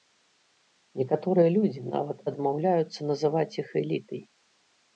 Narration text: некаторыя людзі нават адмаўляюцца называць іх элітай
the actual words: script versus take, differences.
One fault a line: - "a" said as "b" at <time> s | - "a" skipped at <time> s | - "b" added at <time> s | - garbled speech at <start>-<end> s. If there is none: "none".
none